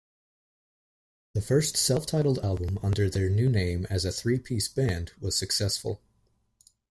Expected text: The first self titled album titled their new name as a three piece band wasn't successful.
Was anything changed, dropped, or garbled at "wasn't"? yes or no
yes